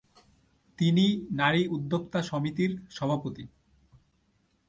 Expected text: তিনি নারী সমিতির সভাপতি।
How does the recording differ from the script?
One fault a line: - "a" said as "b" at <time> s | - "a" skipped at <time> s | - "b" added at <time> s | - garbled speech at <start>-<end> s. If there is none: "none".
- "উদ্যোক্তা" added at 1.7 s